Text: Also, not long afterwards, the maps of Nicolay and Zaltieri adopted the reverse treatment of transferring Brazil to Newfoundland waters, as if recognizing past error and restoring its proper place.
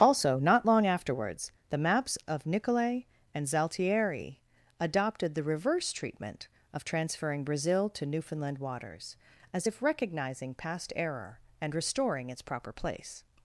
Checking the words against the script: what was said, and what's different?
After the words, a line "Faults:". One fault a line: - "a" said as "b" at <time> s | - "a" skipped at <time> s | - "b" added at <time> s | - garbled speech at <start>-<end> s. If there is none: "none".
Also, not long afterwards, the maps of Nicolay and Zaltieri adopted the reverse treatment of transferring Brazil to Newfoundland waters, as if recognizing past error and restoring its proper place.
Faults:
none